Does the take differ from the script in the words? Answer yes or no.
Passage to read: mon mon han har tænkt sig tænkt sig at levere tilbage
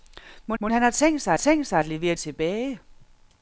no